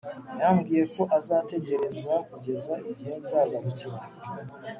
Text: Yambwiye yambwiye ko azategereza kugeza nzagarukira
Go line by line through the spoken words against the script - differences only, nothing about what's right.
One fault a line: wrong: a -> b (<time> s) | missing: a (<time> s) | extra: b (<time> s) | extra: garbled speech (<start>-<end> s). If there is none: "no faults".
missing: yambwiye (0.8 s)
extra: igihe (2.9 s)